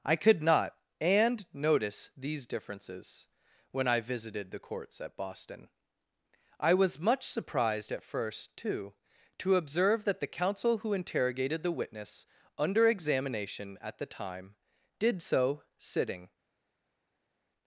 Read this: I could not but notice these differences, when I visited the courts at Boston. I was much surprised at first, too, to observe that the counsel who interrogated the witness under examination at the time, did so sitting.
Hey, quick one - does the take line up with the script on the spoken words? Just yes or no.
no